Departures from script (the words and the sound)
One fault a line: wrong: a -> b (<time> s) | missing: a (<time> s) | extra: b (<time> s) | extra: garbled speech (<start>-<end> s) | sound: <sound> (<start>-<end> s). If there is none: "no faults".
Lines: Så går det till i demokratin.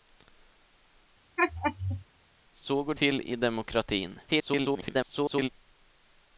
sound: laugh (1.4-2.0 s)
missing: det (2.9 s)
extra: garbled speech (4.3-5.5 s)